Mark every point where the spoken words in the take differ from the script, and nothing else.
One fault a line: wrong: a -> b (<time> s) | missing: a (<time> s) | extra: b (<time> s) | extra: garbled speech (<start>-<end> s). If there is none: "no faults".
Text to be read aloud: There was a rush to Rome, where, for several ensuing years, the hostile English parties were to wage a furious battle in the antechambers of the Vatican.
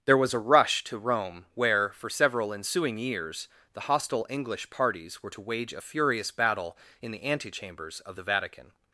no faults